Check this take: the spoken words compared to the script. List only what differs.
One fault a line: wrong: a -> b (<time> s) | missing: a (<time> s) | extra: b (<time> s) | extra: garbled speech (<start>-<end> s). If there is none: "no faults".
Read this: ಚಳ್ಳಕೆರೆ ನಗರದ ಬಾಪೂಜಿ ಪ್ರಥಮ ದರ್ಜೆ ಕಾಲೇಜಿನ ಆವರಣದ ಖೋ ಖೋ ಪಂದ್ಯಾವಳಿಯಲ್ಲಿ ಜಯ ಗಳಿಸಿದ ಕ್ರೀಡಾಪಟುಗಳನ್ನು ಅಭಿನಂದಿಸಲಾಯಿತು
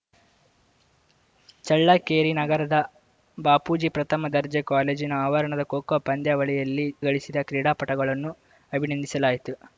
missing: ಜಯ (6.9 s)